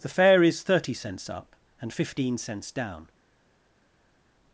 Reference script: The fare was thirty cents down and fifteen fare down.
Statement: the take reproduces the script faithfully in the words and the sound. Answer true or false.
false